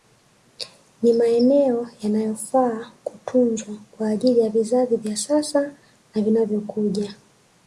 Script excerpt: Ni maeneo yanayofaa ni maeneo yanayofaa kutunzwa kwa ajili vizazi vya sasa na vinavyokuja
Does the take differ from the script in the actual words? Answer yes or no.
yes